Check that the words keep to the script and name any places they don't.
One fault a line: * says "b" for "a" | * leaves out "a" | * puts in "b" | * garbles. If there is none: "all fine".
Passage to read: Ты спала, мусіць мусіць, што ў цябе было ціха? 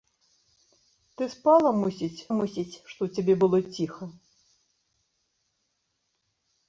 all fine